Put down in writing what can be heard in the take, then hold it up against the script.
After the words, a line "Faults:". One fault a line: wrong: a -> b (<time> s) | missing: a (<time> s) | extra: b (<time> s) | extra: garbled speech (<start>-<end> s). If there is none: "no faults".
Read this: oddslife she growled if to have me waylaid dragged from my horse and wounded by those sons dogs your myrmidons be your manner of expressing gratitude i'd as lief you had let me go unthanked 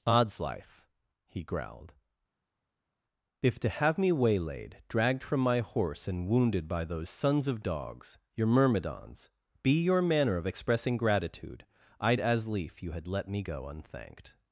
oddslife he growled if to have me waylaid dragged from my horse and wounded by those sons of dogs your myrmidons be your manner of expressing gratitude i'd as lief you had let me go unthanked
Faults:
wrong: she -> he (1.2 s)
extra: of (7.5 s)